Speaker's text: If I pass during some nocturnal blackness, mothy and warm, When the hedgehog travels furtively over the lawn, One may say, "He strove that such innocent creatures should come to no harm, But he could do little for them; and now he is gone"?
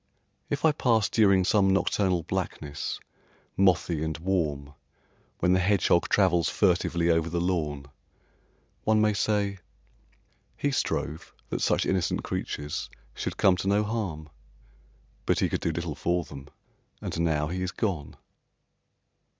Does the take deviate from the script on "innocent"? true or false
false